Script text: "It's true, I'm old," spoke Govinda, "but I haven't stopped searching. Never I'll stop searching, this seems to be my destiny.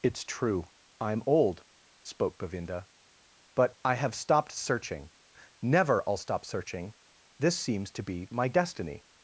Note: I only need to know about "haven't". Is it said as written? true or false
false